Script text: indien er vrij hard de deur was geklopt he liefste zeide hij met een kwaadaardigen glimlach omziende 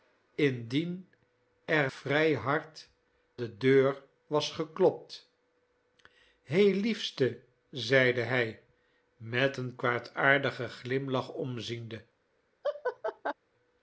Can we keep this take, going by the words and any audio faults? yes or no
no